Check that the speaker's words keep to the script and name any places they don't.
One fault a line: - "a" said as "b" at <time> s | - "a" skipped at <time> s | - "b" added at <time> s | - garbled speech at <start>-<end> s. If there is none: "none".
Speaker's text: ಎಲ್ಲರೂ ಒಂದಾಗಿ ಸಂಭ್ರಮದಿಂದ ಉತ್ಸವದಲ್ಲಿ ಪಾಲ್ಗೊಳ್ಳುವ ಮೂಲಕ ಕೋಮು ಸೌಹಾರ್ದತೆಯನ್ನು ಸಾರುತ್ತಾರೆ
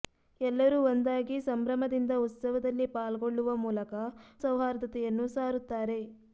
- "ಕೋಮು" skipped at 3.9 s